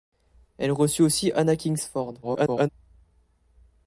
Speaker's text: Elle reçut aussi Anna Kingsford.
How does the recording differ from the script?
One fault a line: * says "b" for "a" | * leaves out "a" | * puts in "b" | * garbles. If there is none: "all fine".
* garbles